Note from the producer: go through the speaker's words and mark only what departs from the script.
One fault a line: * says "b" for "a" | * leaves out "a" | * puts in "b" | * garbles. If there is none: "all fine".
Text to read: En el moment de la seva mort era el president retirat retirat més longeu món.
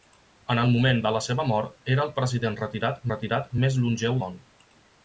all fine